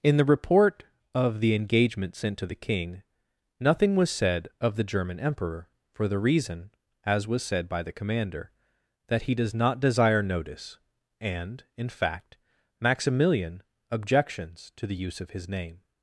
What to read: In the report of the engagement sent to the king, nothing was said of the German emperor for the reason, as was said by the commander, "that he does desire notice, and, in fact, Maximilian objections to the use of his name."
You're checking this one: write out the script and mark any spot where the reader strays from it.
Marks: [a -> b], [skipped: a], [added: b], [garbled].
In the report of the engagement sent to the king, nothing was said of the German emperor for the reason, as was said by the commander, "that he does [added: not] desire notice, and, in fact, Maximilian objections to the use of his name."